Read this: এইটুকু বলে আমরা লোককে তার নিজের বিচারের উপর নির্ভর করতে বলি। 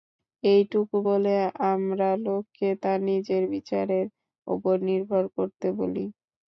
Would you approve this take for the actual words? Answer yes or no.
yes